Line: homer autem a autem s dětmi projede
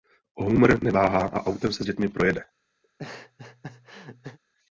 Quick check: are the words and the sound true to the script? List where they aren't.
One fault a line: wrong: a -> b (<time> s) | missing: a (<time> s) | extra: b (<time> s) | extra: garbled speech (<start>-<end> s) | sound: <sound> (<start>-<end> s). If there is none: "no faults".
wrong: autem -> neváhá (0.8 s)
extra: se (1.7 s)
sound: laugh (2.8-4.4 s)